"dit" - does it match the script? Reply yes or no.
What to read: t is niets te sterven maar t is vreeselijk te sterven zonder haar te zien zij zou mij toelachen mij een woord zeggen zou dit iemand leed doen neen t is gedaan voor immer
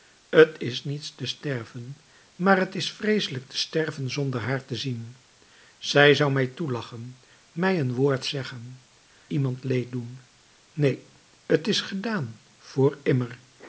no